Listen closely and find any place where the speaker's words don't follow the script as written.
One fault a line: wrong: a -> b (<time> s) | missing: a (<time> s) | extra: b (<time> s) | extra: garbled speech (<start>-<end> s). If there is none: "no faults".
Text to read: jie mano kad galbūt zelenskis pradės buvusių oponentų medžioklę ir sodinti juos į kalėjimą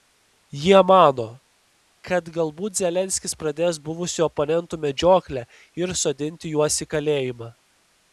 no faults